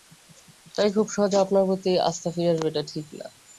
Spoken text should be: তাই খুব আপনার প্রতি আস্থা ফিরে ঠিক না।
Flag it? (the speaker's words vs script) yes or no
yes